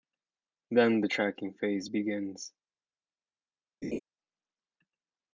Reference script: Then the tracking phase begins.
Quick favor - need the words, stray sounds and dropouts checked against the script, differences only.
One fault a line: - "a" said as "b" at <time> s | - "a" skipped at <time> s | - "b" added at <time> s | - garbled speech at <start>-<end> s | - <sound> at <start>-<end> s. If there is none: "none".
- laugh at 3.8-4.0 s